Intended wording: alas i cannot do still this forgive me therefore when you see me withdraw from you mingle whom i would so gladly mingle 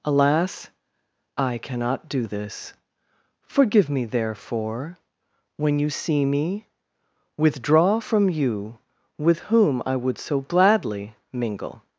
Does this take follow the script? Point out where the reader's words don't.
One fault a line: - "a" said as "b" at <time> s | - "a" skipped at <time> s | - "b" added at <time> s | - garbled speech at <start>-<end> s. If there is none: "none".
- "still" skipped at 2.2 s
- "mingle" said as "with" at 9.2 s